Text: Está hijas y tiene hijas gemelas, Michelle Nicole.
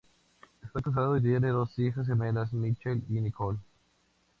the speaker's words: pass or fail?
fail